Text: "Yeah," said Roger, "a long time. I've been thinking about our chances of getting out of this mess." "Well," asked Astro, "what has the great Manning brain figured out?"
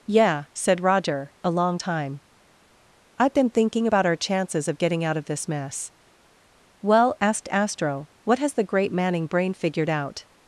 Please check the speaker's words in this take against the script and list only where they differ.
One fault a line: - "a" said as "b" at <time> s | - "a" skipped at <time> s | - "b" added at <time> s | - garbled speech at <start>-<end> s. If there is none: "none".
none